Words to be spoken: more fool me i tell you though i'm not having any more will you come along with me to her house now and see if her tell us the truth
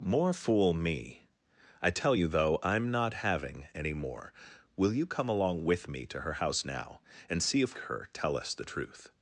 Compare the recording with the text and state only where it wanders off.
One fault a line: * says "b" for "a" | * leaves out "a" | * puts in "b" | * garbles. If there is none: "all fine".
all fine